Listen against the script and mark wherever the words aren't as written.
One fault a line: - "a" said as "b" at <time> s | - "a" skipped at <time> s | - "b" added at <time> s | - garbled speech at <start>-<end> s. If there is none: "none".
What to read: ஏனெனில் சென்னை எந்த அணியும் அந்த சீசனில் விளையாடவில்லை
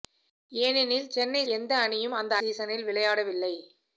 none